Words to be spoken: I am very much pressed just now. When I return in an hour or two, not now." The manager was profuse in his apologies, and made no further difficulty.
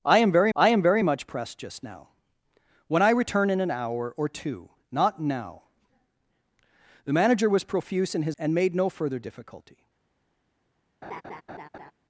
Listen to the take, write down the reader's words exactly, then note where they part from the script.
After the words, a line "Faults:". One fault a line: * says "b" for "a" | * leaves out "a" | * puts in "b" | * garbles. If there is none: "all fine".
I am very I am very much pressed just now. When I return in an hour or two, not now." The manager was profuse in his and made no further difficulty.
Faults:
* puts in "I am very"
* leaves out "apologies"